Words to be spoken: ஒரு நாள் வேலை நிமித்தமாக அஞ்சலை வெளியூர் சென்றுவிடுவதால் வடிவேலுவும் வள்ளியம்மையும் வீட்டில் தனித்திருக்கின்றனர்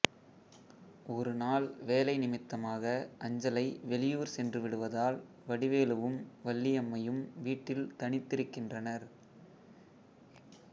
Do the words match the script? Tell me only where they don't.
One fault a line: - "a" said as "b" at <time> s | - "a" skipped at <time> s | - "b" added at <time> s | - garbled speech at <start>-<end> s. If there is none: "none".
none